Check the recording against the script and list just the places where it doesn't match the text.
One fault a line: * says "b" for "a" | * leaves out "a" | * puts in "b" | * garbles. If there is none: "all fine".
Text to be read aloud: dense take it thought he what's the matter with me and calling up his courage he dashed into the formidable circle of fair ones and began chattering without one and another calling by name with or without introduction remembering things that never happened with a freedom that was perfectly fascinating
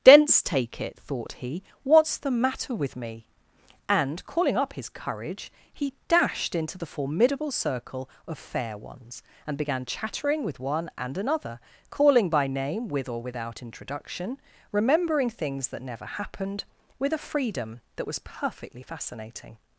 * says "with" for "without"